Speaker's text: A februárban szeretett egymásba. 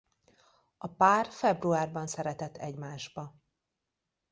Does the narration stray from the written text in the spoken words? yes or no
yes